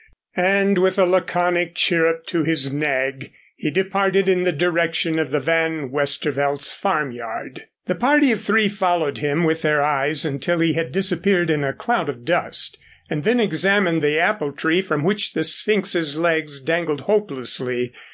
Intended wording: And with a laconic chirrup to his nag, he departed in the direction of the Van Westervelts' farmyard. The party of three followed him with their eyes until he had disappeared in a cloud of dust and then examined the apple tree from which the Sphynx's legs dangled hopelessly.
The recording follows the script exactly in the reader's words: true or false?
true